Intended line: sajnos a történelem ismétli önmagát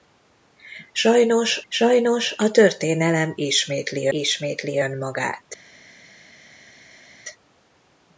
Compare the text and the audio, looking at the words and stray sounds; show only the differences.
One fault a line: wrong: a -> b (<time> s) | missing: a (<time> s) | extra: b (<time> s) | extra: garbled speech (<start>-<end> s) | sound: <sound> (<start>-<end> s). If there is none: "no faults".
extra: sajnos (1.7 s)
extra: ismétli (4.1 s)